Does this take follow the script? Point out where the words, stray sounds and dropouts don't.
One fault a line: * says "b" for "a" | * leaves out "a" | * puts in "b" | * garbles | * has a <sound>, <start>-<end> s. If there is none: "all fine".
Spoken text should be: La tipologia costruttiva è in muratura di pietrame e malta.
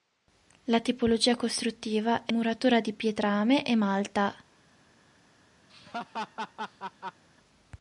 * leaves out "in"
* has a laugh, 5.7-7.2 s